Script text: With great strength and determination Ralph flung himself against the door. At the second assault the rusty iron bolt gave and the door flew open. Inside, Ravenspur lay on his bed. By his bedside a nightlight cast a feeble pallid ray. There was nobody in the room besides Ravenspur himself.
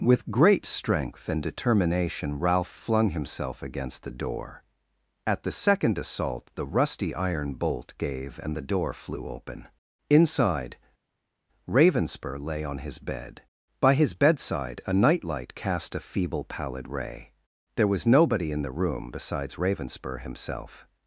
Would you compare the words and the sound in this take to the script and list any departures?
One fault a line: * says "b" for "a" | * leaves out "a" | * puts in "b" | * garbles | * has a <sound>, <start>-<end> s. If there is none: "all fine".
all fine